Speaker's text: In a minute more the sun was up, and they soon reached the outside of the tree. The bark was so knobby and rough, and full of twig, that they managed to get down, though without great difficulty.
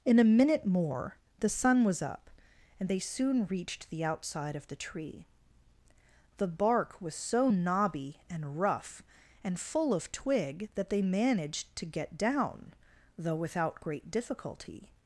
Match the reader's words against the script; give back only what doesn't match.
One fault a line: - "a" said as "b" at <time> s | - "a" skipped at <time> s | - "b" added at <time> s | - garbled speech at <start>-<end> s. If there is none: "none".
none